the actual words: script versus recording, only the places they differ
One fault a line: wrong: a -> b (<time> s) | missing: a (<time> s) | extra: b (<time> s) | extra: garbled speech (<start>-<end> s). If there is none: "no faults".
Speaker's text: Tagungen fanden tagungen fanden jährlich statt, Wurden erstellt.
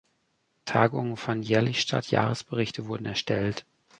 missing: tagungen fanden (1.4 s)
extra: Jahresberichte (2.1 s)